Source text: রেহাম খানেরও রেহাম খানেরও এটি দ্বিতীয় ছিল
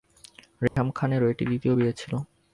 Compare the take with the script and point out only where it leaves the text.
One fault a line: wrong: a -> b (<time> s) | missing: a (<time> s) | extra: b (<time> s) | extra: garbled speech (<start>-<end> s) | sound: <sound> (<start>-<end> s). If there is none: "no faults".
sound: dropout (0.7-0.8 s)
missing: রেহাম খানেরও (1.3 s)
extra: বিয়ে (1.8 s)